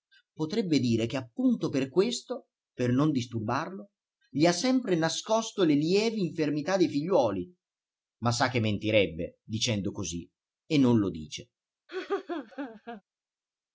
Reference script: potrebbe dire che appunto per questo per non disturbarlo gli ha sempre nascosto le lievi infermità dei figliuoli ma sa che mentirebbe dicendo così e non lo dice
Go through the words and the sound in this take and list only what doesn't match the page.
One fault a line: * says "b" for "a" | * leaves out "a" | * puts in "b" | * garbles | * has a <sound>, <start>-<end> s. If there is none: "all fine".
* has a laugh, 11.9-13.0 s